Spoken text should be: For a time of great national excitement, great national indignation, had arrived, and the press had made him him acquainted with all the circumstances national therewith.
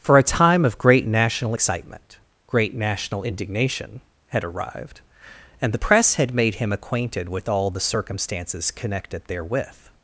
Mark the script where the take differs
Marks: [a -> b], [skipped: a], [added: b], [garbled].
For a time of great national excitement, great national indignation, had arrived, and the press had made him [skipped: him] acquainted with all the circumstances [national -> connected] therewith.